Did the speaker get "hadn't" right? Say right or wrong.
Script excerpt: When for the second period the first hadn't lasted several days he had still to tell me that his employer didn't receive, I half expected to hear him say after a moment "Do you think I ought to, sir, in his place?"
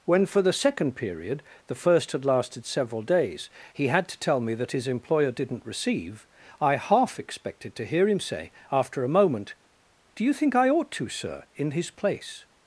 wrong